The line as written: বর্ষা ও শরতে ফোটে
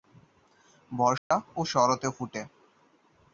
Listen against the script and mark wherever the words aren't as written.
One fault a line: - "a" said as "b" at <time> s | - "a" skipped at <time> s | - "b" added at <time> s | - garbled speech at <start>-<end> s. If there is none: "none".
none